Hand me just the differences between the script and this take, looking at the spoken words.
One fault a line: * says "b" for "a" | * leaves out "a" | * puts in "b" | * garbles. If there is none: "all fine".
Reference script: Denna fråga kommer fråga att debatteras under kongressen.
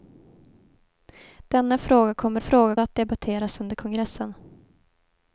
all fine